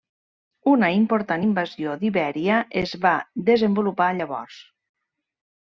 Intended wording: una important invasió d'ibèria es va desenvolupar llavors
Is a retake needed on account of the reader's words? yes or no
no